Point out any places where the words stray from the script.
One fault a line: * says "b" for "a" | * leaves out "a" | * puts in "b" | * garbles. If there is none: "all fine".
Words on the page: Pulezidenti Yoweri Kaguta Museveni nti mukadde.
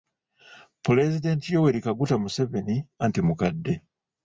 all fine